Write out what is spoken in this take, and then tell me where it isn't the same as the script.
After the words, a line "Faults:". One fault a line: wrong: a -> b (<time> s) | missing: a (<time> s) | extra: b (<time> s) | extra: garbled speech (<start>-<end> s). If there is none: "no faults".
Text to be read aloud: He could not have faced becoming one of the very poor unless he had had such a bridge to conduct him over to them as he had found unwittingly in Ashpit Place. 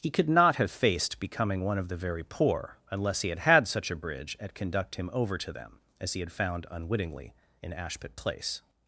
He could not have faced becoming one of the very poor unless he had had such a bridge at conduct him over to them as he had found unwittingly in Ashpit Place.
Faults:
wrong: to -> at (4.4 s)